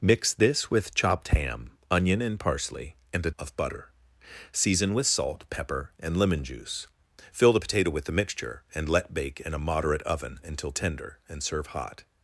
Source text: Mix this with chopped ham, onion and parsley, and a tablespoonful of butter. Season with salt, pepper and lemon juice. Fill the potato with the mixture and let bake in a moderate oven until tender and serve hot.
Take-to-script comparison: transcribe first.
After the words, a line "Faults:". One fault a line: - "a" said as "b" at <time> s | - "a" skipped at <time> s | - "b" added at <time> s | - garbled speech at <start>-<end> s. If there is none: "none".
Mix this with chopped ham, onion and parsley, and a of butter. Season with salt, pepper and lemon juice. Fill the potato with the mixture and let bake in a moderate oven until tender and serve hot.
Faults:
- "tablespoonful" skipped at 3.3 s